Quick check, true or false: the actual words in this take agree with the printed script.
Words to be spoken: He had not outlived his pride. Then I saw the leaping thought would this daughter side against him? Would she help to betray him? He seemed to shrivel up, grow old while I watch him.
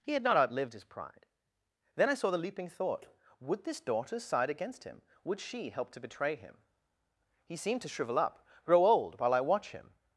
true